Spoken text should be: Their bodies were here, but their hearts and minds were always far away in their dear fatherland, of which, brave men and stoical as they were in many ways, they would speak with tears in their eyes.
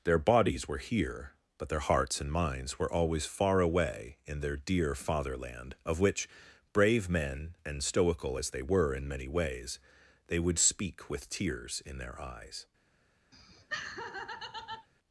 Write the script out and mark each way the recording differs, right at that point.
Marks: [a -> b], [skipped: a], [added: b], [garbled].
Their bodies were here, but their hearts and minds were always far away in their dear fatherland, of which, brave men and stoical as they were in many ways, they would speak with tears in their eyes.